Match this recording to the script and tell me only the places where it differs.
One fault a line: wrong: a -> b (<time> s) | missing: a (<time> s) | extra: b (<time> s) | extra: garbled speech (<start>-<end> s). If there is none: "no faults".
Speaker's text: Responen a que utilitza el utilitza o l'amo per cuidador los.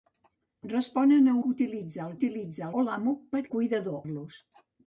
no faults